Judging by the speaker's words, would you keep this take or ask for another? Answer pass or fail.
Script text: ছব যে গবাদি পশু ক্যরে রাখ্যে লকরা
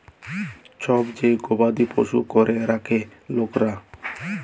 pass